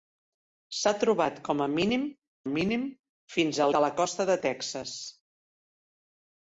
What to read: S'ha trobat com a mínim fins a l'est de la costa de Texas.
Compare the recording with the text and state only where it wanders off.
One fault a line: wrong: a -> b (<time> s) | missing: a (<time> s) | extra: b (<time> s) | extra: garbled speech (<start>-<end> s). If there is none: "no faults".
extra: mínim (2.5 s)
missing: l'est (3.7 s)